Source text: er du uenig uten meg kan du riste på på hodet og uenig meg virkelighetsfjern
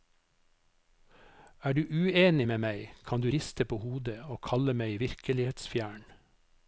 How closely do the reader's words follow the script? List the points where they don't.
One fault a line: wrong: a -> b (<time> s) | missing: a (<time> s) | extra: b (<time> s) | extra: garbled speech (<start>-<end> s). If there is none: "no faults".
wrong: uten -> med (2.5 s)
missing: på (3.8 s)
wrong: uenig -> kalle (4.4 s)